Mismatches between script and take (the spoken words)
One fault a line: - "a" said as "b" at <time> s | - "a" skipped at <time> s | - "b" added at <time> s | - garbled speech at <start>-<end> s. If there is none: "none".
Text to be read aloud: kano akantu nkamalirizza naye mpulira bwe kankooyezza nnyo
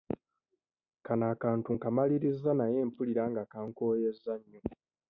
- "bwe" said as "nga" at 3.3 s